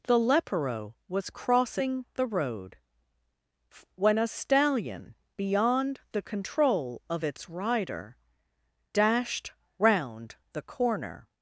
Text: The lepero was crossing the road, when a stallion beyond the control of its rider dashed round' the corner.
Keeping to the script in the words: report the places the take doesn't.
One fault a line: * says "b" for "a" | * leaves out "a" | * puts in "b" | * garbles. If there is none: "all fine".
all fine